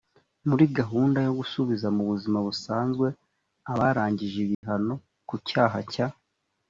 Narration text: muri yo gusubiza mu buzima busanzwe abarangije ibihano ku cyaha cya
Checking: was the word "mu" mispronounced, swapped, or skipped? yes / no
no